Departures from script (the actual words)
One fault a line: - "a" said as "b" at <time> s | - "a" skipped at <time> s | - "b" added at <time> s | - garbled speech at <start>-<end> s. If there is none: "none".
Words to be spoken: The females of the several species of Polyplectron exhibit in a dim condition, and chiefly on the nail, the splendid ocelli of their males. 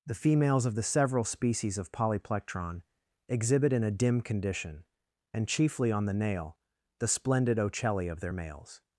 none